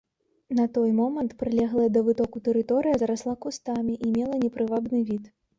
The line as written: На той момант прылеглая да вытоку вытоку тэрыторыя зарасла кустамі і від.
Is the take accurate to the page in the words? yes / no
no